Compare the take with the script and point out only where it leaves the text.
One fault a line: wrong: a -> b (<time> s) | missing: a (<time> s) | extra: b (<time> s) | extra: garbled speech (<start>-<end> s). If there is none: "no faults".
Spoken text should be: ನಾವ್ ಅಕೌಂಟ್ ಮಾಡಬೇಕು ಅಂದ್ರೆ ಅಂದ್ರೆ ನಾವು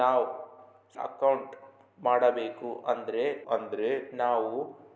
no faults